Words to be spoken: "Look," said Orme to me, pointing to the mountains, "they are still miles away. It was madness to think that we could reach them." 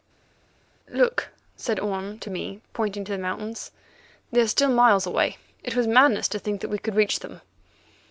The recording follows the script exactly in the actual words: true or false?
true